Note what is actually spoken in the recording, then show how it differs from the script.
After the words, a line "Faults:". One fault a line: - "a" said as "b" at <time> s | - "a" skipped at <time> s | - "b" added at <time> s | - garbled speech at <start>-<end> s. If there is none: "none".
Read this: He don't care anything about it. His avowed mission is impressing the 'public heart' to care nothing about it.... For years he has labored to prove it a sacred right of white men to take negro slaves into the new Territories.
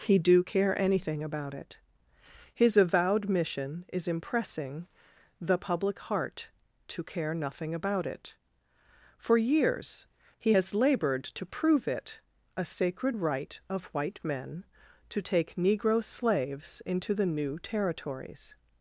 He do care anything about it. His avowed mission is impressing the 'public heart' to care nothing about it.... For years he has labored to prove it a sacred right of white men to take negro slaves into the new Territories.
Faults:
- "don't" said as "do" at 0.2 s